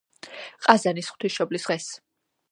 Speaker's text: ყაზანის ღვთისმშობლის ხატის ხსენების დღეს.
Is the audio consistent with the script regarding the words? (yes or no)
no